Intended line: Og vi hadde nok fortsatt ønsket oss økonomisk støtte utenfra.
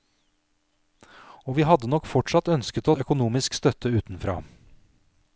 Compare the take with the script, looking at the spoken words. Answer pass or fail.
fail